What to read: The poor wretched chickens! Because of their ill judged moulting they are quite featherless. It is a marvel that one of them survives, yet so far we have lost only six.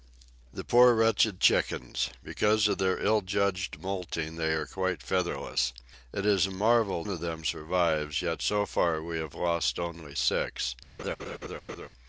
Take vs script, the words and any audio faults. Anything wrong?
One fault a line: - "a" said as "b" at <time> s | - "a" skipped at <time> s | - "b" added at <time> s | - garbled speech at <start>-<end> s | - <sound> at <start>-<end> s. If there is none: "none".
- "that one" skipped at 7.0 s
- laugh at 11.0-11.9 s